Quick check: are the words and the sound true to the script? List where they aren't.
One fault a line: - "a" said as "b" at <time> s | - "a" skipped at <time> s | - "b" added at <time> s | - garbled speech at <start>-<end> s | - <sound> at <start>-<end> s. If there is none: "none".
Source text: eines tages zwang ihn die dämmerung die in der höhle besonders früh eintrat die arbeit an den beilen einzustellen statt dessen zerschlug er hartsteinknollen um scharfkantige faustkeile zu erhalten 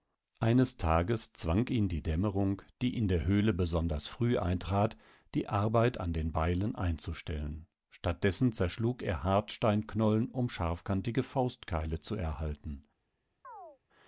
- chirp at 13.4-13.8 s